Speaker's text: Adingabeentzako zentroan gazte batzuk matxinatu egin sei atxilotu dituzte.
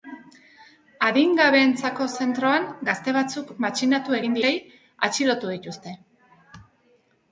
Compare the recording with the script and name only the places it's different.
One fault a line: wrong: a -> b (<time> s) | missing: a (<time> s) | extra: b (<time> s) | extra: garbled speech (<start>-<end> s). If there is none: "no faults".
no faults